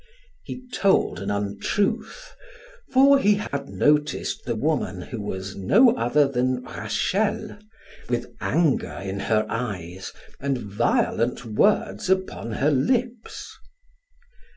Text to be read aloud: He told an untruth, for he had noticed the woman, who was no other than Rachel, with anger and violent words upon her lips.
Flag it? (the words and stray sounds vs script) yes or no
yes